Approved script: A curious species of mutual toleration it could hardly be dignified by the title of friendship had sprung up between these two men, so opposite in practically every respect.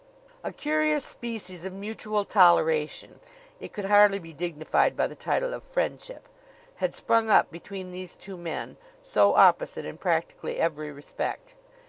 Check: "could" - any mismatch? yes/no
no